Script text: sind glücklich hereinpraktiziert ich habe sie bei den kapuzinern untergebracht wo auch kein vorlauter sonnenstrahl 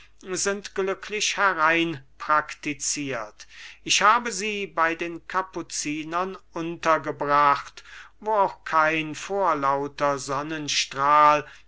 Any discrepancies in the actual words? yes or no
no